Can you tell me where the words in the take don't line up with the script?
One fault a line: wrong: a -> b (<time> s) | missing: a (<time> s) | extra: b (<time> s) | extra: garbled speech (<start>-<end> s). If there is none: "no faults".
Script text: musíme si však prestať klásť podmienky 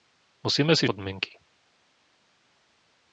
missing: však prestať klásť (0.9 s)